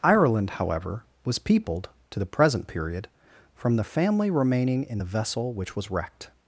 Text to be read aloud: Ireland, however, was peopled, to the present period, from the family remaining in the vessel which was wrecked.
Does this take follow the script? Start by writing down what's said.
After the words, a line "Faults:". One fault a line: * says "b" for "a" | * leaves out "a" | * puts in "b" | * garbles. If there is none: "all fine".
Ireland, however, was peopled, to the present period, from the family remaining in the vessel which was wrecked.
Faults:
all fine